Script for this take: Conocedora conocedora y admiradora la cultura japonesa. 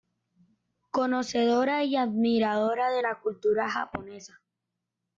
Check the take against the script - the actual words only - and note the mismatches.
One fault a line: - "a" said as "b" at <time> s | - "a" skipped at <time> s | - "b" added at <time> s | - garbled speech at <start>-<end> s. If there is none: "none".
- "conocedora" skipped at 1.8 s
- "de" added at 2.9 s